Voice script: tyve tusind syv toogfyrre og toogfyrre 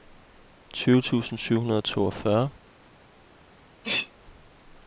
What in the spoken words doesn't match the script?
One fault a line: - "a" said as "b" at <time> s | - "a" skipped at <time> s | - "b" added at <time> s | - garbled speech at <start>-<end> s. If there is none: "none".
- "toogfyrre" said as "hundrede" at 1.6 s